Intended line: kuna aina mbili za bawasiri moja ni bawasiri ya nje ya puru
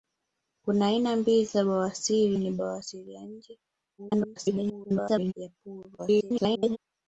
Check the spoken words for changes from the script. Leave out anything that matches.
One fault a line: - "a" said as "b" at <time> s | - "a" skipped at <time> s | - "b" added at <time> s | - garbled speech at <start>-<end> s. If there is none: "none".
- "moja" skipped at 2.4 s
- garbled speech at 4.0-5.3 s
- garbled speech at 6.0-6.8 s